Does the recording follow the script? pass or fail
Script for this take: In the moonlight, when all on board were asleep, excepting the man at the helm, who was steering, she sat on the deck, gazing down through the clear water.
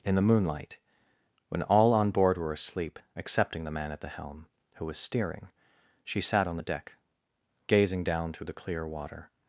pass